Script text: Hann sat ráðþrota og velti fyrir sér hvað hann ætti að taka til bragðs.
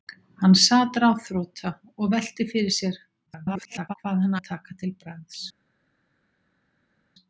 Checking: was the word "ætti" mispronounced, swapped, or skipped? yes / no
yes